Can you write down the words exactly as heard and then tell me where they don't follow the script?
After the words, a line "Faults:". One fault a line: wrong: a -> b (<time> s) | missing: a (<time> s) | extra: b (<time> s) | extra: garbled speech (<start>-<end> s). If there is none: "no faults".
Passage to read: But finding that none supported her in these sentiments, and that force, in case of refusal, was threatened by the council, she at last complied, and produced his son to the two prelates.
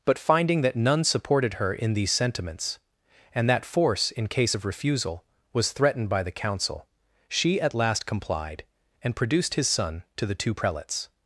But finding that none supported her in these sentiments, and that force, in case of refusal, was threatened by the council, she at last complied, and produced his son to the two prelates.
Faults:
no faults